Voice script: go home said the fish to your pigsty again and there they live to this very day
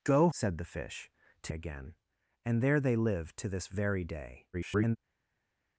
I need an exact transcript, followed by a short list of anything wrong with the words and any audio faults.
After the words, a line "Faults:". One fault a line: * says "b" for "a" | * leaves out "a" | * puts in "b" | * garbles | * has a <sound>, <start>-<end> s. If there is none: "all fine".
go said the fish to again and there they live to this very day [garbled]
Faults:
* leaves out "home"
* leaves out "your pigsty"
* garbles